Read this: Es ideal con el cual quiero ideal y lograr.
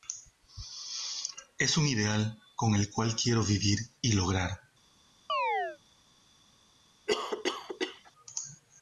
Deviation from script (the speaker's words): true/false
true